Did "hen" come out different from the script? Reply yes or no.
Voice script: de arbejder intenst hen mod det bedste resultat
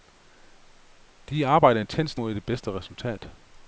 yes